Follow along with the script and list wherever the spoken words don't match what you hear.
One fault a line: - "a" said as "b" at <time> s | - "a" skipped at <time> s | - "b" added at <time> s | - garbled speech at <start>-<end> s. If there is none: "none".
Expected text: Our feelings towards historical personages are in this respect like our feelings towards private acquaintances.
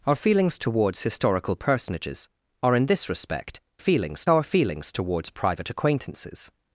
- "like" said as "feelings" at 3.8 s